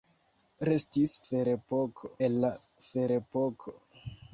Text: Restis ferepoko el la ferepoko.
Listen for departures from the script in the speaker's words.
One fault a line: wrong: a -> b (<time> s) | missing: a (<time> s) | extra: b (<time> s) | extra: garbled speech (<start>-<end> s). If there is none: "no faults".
no faults